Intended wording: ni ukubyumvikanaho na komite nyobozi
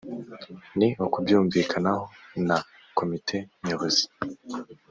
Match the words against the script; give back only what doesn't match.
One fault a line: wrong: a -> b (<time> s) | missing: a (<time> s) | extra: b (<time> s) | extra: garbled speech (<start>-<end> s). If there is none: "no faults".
no faults